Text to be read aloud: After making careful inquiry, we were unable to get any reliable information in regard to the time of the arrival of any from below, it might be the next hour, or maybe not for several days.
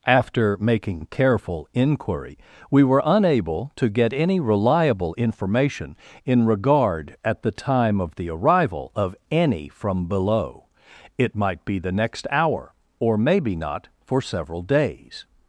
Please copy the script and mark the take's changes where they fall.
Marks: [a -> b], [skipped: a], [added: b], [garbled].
After making careful inquiry, we were unable to get any reliable information in regard [to -> at] the time of the arrival of any from below, it might be the next hour, or maybe not for several days.